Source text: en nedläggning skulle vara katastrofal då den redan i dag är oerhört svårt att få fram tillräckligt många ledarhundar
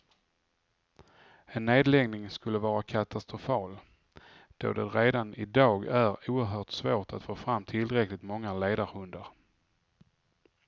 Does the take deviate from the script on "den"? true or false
true